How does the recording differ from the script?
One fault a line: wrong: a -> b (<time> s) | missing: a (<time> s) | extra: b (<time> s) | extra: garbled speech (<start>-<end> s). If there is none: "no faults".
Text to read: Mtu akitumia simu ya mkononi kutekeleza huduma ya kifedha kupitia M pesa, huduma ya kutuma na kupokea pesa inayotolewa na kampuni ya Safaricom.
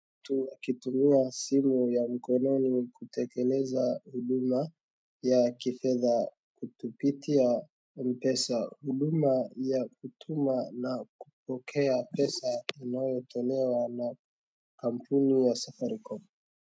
no faults